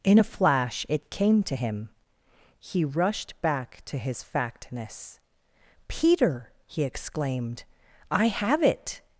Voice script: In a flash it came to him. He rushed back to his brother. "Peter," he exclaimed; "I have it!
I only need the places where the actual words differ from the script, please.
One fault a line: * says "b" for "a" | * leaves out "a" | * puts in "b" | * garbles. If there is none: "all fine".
* says "factness" for "brother"